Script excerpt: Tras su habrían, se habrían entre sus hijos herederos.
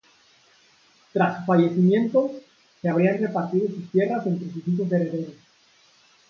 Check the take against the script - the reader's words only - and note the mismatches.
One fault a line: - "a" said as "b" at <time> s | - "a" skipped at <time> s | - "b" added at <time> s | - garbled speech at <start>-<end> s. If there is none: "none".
- "habrían" said as "fallecimiento" at 1.4 s
- "repartido sus tierras" added at 3.2 s